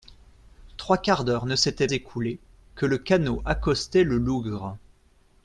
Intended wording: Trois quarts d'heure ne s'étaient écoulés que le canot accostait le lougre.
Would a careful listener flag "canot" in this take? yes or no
no